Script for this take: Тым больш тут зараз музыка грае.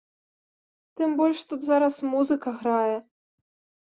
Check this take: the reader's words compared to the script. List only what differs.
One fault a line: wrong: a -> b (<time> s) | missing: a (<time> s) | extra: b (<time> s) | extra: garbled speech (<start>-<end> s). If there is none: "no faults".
no faults